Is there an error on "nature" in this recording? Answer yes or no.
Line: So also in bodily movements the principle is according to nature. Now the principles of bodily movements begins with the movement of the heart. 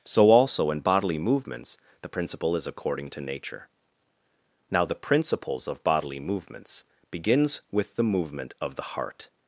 no